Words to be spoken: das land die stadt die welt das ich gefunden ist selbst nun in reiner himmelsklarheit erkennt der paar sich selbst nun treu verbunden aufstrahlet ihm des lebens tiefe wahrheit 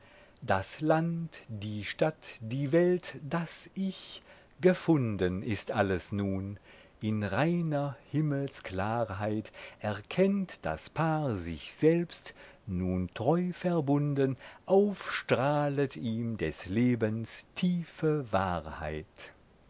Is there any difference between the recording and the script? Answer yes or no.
yes